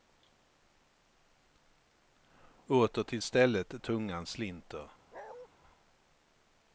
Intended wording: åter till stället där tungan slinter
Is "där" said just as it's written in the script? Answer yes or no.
no